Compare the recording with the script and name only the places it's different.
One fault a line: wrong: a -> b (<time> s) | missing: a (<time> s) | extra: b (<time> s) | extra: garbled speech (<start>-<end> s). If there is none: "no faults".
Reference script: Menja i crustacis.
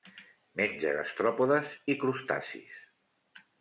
extra: gastròpodes (1.0 s)